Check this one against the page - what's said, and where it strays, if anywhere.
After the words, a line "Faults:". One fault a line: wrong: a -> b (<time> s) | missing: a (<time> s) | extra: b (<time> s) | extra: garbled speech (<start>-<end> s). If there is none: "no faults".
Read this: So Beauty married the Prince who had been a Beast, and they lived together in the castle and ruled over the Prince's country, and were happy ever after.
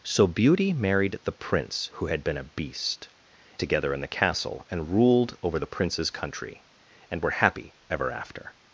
So Beauty married the Prince who had been a Beast, together in the castle and ruled over the Prince's country, and were happy ever after.
Faults:
missing: and they lived (3.1 s)